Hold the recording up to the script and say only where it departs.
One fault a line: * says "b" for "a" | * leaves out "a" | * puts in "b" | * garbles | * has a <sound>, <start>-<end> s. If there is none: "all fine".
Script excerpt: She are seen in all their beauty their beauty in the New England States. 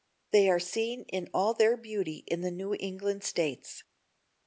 * says "They" for "She"
* leaves out "their beauty"